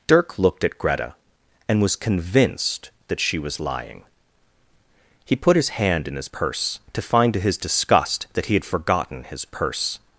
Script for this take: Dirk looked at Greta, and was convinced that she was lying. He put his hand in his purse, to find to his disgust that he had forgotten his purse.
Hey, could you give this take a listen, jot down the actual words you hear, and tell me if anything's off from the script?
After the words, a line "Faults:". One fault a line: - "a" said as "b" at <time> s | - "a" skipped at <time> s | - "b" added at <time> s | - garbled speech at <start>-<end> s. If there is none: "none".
Dirk looked at Greta, and was convinced that she was lying. He put his hand in his purse, to find to his disgust that he had forgotten his purse.
Faults:
none